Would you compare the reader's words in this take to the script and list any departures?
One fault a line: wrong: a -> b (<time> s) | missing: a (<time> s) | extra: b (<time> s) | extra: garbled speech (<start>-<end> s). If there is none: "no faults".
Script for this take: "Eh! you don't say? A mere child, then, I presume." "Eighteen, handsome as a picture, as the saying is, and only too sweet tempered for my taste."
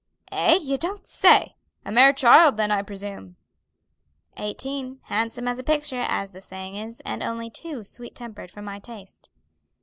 no faults